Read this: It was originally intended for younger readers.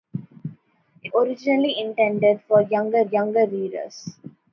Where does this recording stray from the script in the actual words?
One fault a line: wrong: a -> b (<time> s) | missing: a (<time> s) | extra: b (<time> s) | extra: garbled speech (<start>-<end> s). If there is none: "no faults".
missing: was (1.1 s)
extra: younger (3.0 s)